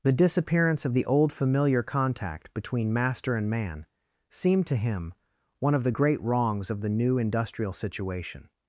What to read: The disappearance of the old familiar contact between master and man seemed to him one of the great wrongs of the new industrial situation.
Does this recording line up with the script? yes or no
yes